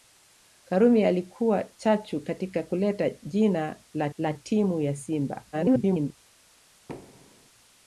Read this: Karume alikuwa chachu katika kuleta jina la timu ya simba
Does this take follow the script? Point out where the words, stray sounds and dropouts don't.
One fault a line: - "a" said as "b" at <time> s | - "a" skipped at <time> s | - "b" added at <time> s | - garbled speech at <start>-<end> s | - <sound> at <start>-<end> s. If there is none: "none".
- "la" added at 4.2 s
- garbled speech at 5.5-6.2 s
- thud at 6.9-7.5 s